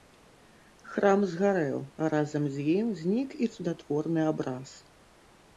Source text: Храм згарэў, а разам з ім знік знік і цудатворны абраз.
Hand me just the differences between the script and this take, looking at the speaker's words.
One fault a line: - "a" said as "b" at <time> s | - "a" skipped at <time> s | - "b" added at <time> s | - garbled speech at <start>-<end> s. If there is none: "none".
- "знік" skipped at 3.3 s